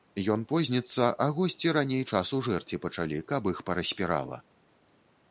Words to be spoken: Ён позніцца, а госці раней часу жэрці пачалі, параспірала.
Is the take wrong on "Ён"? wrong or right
right